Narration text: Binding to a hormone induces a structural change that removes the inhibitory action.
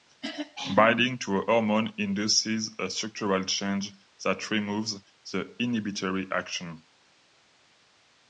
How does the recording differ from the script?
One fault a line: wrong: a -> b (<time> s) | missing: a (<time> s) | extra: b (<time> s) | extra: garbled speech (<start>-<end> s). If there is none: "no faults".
no faults